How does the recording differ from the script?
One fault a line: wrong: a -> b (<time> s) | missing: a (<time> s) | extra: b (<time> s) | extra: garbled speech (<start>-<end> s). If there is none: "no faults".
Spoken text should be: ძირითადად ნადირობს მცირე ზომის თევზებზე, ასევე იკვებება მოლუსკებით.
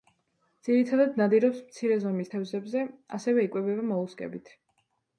no faults